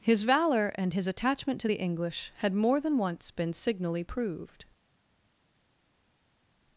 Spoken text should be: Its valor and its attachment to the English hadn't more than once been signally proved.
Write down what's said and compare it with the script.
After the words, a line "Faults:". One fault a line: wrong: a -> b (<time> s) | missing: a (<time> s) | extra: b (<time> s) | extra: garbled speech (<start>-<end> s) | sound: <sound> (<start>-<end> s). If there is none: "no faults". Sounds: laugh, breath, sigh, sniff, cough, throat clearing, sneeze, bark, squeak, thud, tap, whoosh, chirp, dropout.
His valor and his attachment to the English had more than once been signally proved.
Faults:
wrong: Its -> His (0.0 s)
wrong: its -> his (0.9 s)
wrong: hadn't -> had (2.4 s)